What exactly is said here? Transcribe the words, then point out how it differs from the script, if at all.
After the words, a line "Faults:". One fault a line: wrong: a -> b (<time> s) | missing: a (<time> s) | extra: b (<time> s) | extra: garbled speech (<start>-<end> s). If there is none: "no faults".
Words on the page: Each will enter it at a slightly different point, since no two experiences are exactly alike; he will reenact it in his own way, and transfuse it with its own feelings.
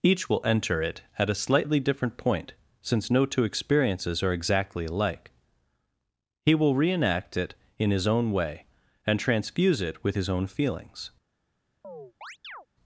Each will enter it at a slightly different point, since no two experiences are exactly alike; he will reenact it in his own way, and transfuse it with his own feelings.
Faults:
wrong: its -> his (10.1 s)